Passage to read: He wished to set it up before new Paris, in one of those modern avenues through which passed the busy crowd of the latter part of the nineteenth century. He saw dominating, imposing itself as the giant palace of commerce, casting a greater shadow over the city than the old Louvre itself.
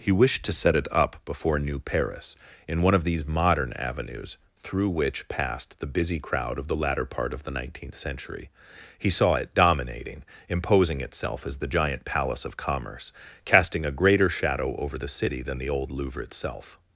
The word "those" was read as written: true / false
false